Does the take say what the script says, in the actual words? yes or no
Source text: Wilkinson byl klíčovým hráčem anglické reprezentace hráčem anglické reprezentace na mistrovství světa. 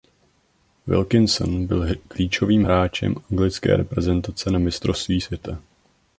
no